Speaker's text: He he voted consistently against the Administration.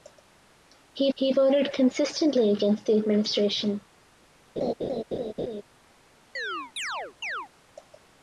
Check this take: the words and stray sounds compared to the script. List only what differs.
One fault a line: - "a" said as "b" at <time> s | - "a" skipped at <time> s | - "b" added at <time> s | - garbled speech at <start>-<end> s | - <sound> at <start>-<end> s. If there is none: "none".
- laugh at 4.6-5.6 s
- chirp at 6.3-7.5 s